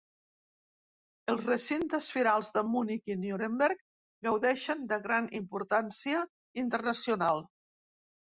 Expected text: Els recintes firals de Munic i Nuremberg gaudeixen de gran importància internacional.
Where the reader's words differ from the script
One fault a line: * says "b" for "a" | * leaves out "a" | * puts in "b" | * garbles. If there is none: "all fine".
all fine